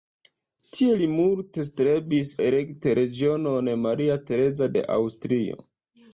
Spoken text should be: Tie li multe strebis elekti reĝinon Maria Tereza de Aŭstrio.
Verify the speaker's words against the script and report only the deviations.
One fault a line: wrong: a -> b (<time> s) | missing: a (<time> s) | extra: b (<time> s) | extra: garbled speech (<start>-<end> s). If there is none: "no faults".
no faults